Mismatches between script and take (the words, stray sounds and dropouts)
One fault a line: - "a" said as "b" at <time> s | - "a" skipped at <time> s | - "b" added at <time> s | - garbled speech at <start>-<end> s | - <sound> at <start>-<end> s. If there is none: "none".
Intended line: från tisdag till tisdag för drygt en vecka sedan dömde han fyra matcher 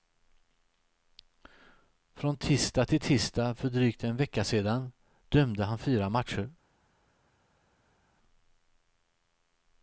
none